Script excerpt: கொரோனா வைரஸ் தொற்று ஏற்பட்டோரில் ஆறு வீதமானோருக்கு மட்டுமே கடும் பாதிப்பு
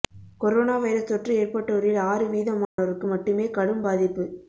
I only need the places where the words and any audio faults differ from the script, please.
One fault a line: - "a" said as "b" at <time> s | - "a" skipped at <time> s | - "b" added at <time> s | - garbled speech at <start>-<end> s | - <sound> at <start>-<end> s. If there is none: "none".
- dropout at 2.6-2.8 s